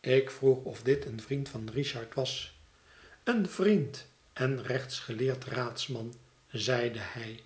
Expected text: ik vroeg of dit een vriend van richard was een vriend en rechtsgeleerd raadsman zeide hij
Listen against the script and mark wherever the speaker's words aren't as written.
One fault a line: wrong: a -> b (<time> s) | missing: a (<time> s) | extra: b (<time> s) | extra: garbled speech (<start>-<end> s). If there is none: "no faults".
no faults